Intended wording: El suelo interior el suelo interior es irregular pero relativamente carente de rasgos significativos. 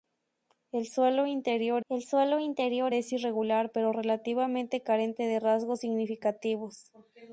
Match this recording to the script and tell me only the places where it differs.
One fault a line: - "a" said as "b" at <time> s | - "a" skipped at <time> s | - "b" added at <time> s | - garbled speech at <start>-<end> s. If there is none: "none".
none